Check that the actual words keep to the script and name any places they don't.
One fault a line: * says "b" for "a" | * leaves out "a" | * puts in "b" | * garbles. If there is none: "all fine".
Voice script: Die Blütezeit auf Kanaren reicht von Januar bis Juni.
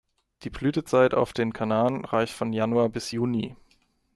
* puts in "den"